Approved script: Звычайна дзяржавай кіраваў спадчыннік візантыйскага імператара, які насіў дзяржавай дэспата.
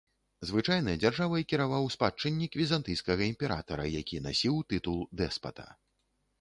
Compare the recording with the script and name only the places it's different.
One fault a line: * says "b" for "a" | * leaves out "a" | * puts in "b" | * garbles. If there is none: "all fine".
* says "тытул" for "дзяржавай"